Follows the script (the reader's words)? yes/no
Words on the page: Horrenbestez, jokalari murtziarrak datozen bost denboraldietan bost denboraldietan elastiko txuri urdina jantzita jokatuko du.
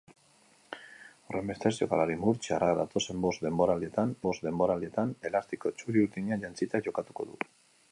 yes